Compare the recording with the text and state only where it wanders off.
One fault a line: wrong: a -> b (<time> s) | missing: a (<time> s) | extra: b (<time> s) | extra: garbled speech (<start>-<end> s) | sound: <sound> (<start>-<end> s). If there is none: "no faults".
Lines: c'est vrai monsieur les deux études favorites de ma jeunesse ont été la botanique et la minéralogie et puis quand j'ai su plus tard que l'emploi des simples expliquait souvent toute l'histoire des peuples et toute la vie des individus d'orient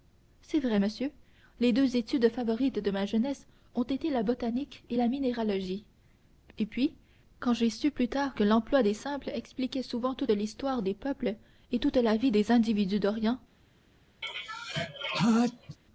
sound: sneeze (14.2-15.8 s)